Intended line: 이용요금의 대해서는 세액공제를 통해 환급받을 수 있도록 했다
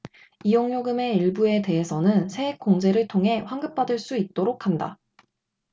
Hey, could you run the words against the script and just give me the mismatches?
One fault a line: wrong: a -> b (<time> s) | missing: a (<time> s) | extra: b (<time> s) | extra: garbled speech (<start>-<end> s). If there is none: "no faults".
extra: 일부에 (1.2 s)
wrong: 했다 -> 한다 (4.7 s)